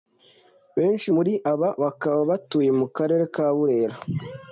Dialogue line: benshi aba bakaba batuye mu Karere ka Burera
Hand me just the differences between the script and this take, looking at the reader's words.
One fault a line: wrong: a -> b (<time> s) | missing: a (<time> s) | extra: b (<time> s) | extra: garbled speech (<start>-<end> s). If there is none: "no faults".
extra: muri (1.1 s)